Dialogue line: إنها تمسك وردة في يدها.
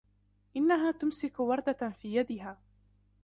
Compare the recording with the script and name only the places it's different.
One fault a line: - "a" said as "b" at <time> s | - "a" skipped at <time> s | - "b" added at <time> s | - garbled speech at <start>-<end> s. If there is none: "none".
none